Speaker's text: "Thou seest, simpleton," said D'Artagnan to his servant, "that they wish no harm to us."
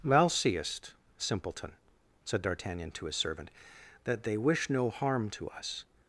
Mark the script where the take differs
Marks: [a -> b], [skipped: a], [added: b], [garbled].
"Thou seest, simpleton," said D'Artagnan to his servant, "that they wish no harm to us."